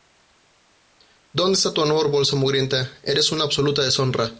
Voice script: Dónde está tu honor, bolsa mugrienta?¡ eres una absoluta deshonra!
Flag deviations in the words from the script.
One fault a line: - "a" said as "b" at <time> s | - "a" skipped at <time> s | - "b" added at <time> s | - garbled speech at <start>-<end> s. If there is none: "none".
none